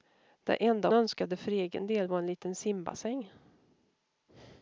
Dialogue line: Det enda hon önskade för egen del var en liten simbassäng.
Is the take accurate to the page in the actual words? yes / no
no